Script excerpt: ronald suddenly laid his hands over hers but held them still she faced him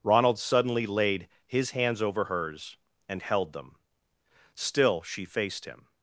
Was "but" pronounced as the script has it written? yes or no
no